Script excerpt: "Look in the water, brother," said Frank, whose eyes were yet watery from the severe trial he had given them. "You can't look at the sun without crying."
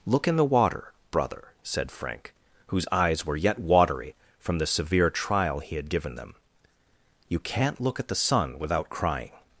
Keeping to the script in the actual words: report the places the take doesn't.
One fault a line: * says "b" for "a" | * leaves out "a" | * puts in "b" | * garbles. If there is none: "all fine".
all fine